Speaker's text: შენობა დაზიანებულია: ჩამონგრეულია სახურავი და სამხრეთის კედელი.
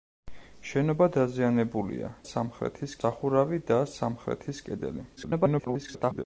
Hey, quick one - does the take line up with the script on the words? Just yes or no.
no